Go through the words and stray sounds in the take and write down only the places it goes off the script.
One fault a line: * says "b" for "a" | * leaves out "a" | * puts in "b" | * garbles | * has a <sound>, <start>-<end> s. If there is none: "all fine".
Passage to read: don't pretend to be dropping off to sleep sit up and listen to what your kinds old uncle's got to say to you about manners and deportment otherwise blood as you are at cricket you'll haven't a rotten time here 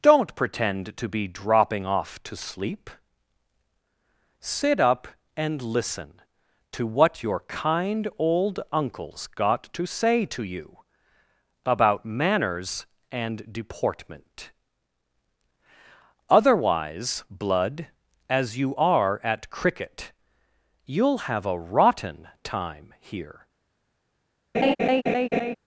* says "kind" for "kinds"
* says "have" for "haven't"
* has a laugh, 24.5-25.6 s